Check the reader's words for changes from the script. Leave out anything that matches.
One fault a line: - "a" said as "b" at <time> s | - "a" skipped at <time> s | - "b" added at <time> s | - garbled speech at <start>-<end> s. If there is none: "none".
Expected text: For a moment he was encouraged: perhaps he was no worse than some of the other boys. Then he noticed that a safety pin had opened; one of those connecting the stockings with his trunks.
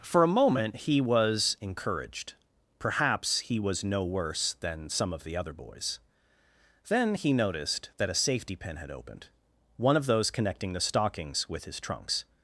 none